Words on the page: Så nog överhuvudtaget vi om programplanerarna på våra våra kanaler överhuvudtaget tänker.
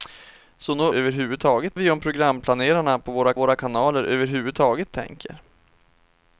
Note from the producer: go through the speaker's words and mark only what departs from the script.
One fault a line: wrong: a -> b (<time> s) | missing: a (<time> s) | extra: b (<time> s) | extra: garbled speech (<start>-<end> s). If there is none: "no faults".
no faults